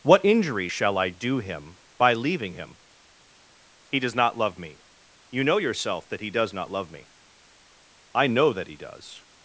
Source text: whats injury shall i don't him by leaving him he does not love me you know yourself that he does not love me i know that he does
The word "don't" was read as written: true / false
false